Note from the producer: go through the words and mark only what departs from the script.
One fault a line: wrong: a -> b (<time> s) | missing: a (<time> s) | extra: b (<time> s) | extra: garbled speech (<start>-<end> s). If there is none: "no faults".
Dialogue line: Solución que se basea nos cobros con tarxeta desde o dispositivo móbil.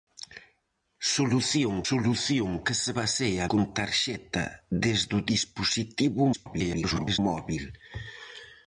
extra: solución (1.9 s)
missing: nos cobros (3.4 s)
extra: garbled speech (6.3-7.2 s)